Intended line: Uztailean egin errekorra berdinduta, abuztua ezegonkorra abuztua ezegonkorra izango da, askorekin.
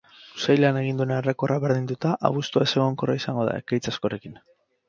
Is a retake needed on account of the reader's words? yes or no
yes